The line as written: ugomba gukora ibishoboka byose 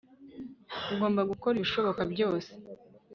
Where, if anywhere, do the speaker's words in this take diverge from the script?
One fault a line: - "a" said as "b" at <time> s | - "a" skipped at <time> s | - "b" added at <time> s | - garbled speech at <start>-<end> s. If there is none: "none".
none